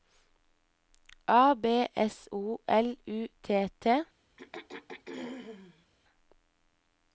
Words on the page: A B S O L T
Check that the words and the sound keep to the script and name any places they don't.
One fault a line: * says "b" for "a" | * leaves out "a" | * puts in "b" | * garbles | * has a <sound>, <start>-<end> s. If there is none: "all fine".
* puts in "U T"
* has a throat clearing, 4.4-5.9 s